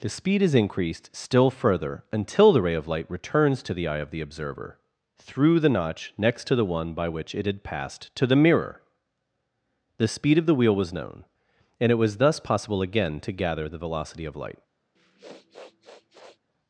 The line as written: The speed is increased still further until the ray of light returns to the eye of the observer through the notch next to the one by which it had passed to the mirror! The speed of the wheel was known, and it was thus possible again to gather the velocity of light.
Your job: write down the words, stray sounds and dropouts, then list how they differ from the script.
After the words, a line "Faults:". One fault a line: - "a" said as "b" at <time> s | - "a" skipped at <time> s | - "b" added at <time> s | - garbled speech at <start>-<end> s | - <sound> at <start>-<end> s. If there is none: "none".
The speed is increased still further until the ray of light returns to the eye of the observer through the notch next to the one by which it had passed to the mirror! The speed of the wheel was known, and it was thus possible again to gather the velocity of light.
Faults:
- sniff at 15.0-16.4 s